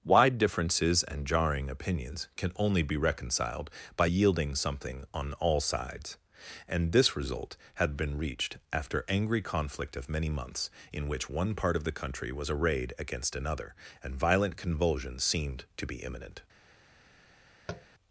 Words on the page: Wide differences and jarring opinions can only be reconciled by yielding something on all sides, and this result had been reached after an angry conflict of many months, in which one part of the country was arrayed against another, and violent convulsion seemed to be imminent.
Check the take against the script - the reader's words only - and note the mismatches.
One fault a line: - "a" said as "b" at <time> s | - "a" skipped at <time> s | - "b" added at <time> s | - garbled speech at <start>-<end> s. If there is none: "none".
- "an" skipped at 9.0 s